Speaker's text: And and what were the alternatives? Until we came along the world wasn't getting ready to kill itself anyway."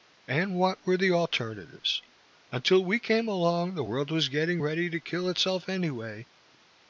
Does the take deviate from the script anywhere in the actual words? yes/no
yes